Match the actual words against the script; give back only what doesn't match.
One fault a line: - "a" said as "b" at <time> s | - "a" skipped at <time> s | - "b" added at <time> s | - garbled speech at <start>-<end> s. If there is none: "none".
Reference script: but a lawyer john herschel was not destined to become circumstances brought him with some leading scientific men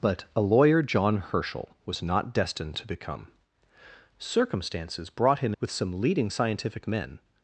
none